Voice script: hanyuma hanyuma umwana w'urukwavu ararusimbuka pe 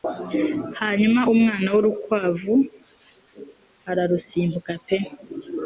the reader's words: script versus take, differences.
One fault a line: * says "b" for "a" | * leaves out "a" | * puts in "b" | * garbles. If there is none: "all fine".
* leaves out "hanyuma"